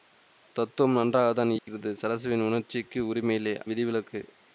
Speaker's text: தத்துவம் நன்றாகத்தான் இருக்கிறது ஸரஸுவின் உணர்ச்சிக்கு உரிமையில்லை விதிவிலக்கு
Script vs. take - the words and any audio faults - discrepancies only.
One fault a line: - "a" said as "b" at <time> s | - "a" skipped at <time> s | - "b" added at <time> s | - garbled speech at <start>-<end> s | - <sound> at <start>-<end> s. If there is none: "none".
- dropout at 1.6-1.7 s